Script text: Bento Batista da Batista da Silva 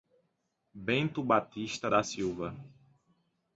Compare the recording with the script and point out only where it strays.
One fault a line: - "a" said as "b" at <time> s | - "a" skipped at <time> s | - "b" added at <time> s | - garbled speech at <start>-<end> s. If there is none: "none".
- "Batista da" skipped at 2.0 s